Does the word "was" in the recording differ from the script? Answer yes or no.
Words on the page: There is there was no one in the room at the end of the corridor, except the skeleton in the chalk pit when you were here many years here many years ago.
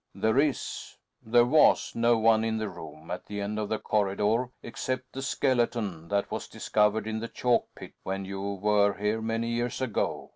no